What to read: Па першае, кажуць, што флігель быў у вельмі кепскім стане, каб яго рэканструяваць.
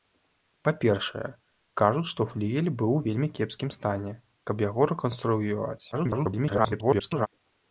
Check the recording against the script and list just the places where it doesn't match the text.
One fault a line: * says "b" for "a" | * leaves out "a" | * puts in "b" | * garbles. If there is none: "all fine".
* garbles